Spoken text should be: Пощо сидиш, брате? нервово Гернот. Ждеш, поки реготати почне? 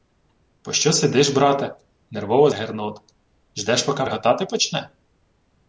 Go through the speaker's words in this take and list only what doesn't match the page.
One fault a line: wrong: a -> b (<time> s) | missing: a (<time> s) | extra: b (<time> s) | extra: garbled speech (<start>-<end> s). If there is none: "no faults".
no faults